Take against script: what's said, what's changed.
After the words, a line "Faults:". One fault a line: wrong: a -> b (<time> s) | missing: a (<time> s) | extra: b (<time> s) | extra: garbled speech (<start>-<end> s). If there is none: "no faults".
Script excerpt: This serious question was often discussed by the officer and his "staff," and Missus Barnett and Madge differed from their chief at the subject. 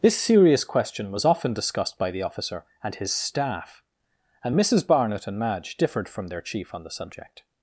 This serious question was often discussed by the officer and his "staff," and Missus Barnett and Madge differed from their chief on the subject.
Faults:
wrong: at -> on (6.7 s)